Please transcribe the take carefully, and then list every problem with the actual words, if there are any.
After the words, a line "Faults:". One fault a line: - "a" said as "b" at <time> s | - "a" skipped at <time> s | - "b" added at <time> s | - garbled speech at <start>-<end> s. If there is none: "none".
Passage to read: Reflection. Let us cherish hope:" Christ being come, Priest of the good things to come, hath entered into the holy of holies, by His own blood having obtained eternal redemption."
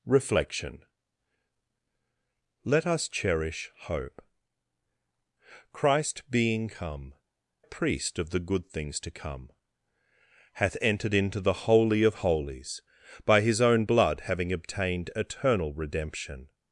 Reflection. Let us cherish hope:" Christ being come, Priest of the good things to come, hath entered into the holy of holies, by His own blood having obtained eternal redemption."
Faults:
none